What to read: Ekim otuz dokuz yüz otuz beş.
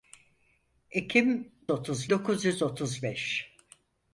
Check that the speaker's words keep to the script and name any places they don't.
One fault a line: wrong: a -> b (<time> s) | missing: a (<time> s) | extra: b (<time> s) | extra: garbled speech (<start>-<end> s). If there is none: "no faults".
no faults